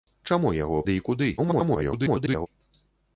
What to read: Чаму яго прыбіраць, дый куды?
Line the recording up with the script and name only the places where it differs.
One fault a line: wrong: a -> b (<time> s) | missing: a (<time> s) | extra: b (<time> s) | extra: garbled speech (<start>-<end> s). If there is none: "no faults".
missing: прыбіраць (0.8 s)
extra: garbled speech (1.4-2.5 s)